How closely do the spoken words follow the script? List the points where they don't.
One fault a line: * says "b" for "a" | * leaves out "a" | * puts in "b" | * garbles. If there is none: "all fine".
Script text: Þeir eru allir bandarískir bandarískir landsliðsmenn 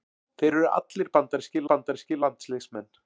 all fine